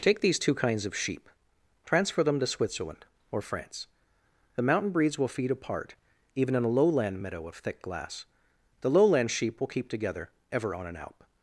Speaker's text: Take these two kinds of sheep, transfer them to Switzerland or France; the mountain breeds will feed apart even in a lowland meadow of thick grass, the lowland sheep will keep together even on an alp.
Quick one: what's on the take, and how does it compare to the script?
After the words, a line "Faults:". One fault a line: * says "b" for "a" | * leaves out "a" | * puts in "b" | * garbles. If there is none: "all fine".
Take these two kinds of sheep, transfer them to Switzerland or France; the mountain breeds will feed apart even in a lowland meadow of thick glass, the lowland sheep will keep together ever on an alp.
Faults:
* says "glass" for "grass"
* says "ever" for "even"